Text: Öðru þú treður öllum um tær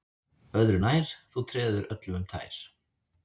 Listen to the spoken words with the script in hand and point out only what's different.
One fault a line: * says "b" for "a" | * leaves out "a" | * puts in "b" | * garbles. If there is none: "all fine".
* puts in "nær"